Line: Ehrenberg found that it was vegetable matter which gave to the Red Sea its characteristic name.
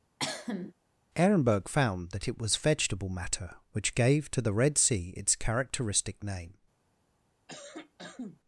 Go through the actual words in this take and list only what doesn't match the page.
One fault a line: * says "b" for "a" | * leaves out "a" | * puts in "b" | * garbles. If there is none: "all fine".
all fine